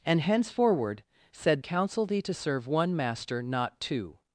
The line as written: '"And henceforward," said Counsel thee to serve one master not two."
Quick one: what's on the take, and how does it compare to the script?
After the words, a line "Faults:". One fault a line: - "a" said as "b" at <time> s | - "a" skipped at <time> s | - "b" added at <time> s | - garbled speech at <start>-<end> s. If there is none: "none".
'"And henceforward," said Counsel thee to serve one master not two."
Faults:
none